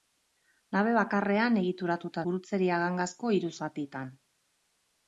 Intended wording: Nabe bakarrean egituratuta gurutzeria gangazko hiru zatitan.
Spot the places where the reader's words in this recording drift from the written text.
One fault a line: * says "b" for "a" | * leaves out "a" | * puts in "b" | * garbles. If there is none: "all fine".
all fine